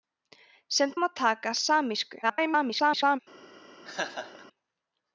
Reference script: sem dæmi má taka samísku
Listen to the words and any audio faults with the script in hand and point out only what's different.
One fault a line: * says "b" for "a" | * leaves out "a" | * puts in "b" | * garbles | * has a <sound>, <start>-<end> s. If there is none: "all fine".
* leaves out "dæmi"
* garbles
* has a laugh, 3.8-4.5 s